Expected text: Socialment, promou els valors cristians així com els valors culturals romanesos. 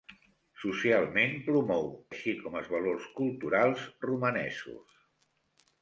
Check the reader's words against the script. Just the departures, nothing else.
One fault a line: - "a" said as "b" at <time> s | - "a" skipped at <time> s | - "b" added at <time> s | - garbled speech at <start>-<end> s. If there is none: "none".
- "els valors cristians" skipped at 1.9 s